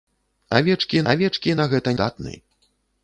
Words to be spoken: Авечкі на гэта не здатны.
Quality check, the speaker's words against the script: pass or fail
fail